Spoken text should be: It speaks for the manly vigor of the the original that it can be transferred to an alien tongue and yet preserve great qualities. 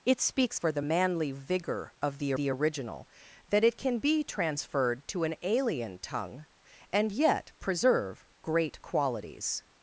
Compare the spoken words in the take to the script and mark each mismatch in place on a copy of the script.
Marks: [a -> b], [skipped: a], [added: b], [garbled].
It speaks for the manly vigor of the the original that it can be transferred to an alien tongue and yet preserve great qualities.